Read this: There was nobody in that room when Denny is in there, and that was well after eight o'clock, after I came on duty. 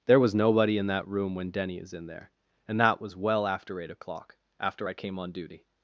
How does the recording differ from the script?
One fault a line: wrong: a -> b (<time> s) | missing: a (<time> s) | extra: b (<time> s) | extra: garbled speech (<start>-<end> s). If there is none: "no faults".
no faults